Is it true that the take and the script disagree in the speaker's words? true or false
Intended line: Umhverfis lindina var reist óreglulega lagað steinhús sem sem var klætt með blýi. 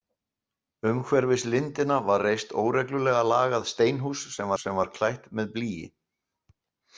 false